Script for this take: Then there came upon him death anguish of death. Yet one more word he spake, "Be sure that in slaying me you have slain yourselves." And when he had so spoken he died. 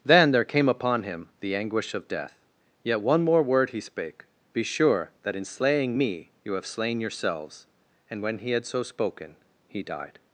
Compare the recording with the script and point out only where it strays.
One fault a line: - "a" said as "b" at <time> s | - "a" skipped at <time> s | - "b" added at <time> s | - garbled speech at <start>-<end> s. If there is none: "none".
- "death" said as "the" at 1.4 s